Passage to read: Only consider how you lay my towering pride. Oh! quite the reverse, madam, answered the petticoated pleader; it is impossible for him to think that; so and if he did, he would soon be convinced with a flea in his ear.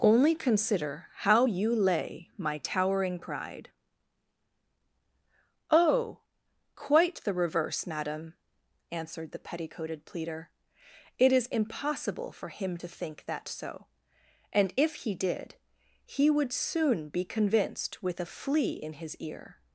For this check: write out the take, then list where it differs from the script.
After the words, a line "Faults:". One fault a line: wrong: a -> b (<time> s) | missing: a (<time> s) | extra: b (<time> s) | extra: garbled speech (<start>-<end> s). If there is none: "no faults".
Only consider how you lay my towering pride. Oh! quite the reverse, madam, answered the petticoated pleader; it is impossible for him to think that; so and if he did, he would soon be convinced with a flea in his ear.
Faults:
no faults